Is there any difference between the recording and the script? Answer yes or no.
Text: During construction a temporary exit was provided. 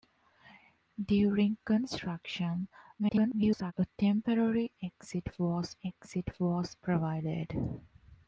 yes